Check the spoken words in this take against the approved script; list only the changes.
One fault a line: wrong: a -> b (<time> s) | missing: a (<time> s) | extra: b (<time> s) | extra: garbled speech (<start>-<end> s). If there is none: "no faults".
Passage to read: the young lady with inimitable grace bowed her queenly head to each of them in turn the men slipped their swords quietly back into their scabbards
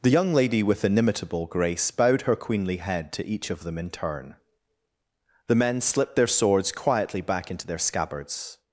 no faults